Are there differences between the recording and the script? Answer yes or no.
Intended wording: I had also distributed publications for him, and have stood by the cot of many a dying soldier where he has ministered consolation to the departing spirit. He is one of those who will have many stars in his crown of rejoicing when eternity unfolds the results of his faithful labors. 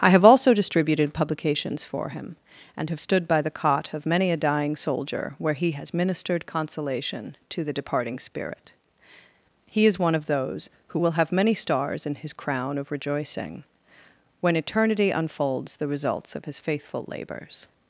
yes